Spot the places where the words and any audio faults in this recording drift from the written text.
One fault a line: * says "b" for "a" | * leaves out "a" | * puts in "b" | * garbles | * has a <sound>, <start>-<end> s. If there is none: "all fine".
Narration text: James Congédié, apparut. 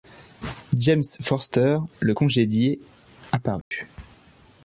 * puts in "Forster le"
* has a dropout, 3.6-3.7 s